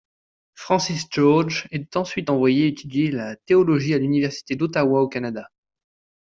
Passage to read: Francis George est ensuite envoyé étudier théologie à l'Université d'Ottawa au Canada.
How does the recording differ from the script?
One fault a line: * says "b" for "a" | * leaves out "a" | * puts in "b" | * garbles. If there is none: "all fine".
* puts in "la"